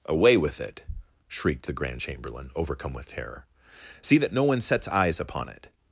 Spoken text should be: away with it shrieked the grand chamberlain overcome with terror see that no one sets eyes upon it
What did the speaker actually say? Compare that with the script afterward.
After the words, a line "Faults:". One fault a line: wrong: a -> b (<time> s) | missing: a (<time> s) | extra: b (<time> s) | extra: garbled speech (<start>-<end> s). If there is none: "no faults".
away with it shrieked the grand chamberlain overcome with terror see that no one sets eyes upon it
Faults:
no faults